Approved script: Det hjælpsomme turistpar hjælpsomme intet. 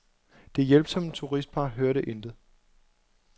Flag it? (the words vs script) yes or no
yes